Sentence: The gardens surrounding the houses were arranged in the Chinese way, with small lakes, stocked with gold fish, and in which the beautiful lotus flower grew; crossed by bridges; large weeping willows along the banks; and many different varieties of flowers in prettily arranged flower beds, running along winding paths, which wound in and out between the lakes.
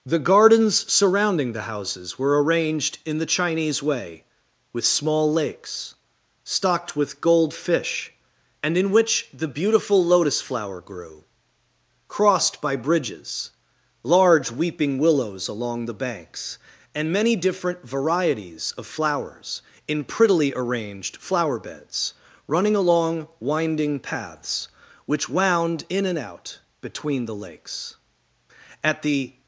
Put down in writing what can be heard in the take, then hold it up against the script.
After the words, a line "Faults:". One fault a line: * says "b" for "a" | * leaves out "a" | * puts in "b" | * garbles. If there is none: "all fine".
The gardens surrounding the houses were arranged in the Chinese way, with small lakes, stocked with gold fish, and in which the beautiful lotus flower grew; crossed by bridges; large weeping willows along the banks; and many different varieties of flowers in prettily arranged flower beds, running along winding paths, which wound in and out between the lakes. At the
Faults:
* puts in "At the"